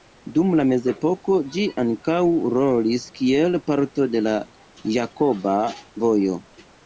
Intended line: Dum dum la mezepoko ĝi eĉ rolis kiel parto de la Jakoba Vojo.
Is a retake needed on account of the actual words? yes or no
yes